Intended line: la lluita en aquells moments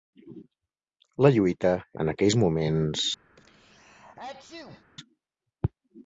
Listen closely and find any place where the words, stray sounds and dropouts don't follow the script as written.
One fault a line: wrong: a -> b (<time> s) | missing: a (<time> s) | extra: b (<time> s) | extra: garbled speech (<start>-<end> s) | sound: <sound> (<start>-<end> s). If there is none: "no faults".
sound: sneeze (3.4-4.8 s)